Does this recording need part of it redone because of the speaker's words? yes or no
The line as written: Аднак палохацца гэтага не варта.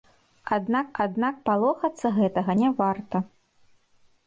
yes